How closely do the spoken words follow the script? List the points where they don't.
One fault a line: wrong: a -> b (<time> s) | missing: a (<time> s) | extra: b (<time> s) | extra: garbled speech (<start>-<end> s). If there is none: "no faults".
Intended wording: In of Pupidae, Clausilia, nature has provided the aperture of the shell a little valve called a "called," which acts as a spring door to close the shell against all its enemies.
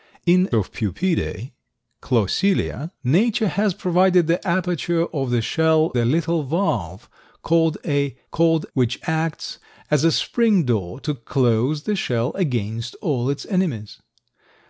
no faults